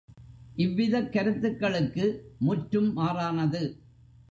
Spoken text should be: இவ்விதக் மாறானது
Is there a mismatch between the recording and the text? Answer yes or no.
yes